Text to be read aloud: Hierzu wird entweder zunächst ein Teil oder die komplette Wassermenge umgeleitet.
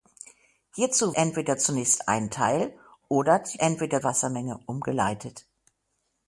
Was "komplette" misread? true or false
true